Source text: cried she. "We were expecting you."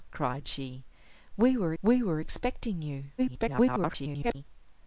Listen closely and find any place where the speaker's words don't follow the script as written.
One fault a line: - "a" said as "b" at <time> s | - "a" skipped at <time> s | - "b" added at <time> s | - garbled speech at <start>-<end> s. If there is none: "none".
- "we were" added at 1.8 s
- garbled speech at 3.2-4.4 s